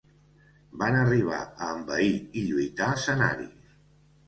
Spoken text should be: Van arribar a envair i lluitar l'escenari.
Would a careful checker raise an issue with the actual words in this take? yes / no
no